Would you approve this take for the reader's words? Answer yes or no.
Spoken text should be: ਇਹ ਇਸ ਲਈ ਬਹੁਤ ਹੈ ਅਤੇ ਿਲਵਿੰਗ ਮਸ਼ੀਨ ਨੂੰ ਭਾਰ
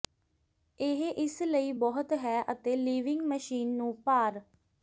yes